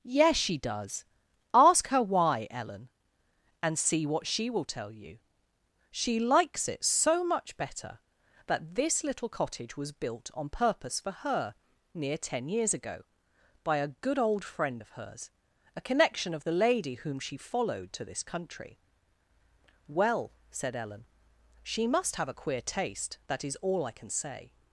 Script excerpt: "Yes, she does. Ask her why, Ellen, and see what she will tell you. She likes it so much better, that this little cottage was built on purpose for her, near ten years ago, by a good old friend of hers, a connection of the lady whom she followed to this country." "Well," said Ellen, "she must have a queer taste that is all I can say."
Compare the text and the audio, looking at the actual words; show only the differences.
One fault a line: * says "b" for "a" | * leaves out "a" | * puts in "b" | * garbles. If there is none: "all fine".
all fine